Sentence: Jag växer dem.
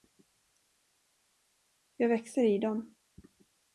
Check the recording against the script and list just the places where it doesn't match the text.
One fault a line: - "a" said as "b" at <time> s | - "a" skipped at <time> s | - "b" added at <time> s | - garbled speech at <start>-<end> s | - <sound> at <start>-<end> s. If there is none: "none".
- "i" added at 2.4 s